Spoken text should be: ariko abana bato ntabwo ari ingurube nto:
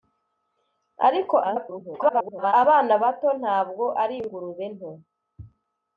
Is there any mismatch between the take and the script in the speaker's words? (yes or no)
yes